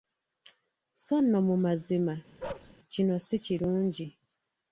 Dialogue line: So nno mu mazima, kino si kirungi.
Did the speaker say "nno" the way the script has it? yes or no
yes